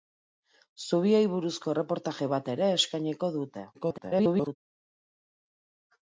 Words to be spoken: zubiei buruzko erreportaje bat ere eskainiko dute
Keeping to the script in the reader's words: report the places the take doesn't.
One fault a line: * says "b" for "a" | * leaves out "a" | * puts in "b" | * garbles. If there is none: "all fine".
* garbles